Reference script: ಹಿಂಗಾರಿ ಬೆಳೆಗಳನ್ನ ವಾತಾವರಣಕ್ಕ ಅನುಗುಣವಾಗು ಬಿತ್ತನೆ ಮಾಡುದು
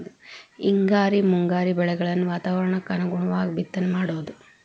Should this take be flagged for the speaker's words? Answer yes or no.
yes